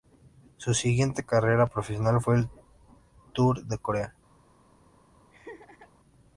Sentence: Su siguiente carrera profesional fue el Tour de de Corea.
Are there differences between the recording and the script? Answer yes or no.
yes